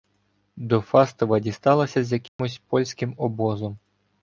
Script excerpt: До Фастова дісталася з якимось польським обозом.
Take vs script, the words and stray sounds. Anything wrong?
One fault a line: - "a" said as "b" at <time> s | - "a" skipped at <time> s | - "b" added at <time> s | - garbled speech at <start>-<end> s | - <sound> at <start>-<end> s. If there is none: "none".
- dropout at 2.3-2.4 s